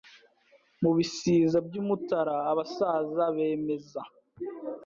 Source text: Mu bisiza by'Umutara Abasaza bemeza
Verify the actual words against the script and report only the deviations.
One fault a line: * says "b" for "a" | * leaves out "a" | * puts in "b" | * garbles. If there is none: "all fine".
all fine